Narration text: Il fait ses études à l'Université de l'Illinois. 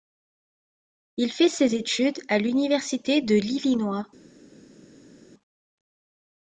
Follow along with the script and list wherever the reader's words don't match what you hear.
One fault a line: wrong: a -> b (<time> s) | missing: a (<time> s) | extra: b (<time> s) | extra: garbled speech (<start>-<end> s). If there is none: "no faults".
no faults